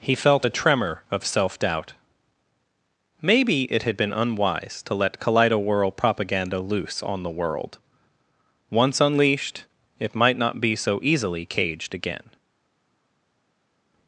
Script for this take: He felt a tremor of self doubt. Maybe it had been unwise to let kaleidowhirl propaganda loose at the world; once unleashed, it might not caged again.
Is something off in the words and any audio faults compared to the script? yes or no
yes